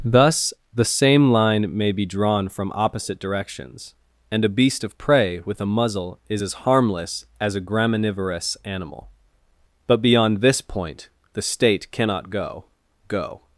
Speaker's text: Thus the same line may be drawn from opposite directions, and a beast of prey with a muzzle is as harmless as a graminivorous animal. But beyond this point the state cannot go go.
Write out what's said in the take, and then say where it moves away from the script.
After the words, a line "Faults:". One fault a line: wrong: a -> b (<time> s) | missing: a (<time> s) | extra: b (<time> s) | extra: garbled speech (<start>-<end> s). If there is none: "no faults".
Thus the same line may be drawn from opposite directions, and a beast of prey with a muzzle is as harmless as a graminivorous animal. But beyond this point the state cannot go go.
Faults:
no faults